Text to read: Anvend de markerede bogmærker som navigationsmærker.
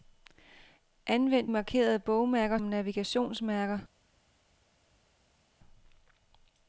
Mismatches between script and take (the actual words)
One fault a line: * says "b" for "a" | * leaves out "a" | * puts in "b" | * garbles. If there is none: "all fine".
* leaves out "de"
* leaves out "som"